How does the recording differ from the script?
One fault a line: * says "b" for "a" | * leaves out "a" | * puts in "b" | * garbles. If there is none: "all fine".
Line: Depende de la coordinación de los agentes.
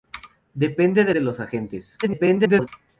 * leaves out "la coordinación"
* garbles